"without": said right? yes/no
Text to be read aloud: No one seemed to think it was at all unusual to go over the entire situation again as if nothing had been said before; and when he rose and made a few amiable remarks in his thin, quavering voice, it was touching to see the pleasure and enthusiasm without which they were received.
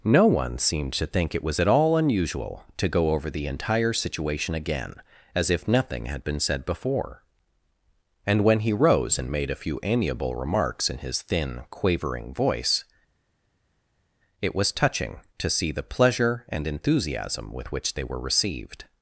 no